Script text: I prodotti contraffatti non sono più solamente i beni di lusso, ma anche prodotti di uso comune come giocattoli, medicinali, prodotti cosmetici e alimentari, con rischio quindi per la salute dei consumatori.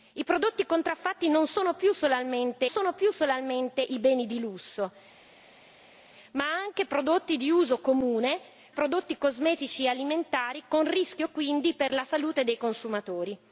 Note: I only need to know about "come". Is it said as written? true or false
false